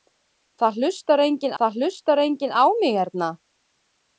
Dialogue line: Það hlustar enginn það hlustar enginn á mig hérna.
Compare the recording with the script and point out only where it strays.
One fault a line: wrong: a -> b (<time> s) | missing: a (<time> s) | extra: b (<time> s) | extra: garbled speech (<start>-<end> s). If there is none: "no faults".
no faults